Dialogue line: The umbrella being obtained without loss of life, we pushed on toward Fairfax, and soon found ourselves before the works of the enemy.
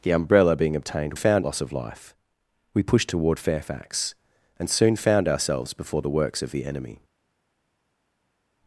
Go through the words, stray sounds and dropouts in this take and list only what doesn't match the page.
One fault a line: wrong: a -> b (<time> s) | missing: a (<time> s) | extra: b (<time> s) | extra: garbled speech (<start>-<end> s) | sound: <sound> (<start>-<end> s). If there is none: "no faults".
wrong: without -> found (1.1 s)
missing: on (3.1 s)